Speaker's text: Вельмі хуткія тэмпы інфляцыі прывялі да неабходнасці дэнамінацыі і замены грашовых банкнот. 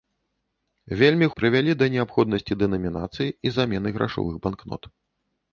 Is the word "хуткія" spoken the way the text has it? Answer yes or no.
no